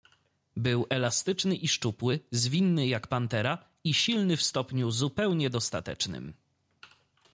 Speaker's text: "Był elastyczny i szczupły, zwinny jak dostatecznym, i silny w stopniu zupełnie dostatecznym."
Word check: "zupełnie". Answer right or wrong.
right